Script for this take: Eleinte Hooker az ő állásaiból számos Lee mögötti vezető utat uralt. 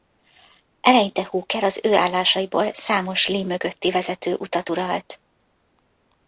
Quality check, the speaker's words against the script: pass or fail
pass